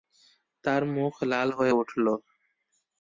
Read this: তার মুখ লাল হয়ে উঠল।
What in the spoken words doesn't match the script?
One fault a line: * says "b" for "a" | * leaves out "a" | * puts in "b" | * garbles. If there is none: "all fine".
all fine